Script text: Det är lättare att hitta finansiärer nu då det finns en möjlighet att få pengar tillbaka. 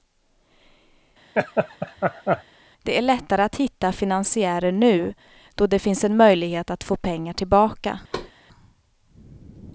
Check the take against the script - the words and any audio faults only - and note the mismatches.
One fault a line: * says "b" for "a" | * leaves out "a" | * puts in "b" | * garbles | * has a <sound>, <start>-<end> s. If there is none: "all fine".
* has a laugh, 1.3-2.4 s
* has a thud, 8.1-8.3 s